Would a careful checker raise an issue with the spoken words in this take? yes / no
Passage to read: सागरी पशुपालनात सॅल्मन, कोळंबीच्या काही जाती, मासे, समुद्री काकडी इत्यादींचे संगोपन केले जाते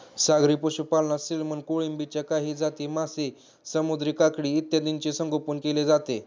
no